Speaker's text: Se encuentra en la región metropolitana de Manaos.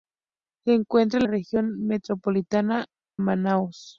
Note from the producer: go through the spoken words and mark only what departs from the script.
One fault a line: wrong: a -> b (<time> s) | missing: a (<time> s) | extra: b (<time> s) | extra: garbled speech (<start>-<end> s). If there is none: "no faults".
missing: la (1.2 s)
missing: de (2.9 s)